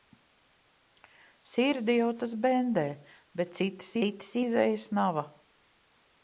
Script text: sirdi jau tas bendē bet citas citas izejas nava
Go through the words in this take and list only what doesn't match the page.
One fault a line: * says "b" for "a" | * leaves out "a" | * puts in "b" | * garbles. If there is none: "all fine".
all fine